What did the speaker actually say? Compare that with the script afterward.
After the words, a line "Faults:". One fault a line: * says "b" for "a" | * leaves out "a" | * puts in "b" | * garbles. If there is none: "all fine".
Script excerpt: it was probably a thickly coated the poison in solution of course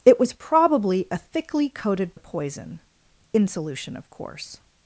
it was probably a thickly coated the poison in solution of course
Faults:
all fine